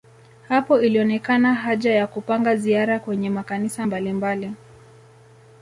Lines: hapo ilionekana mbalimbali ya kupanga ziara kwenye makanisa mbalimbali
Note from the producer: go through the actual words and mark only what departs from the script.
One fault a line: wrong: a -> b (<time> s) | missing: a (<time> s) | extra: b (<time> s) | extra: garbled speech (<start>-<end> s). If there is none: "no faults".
wrong: mbalimbali -> haja (1.5 s)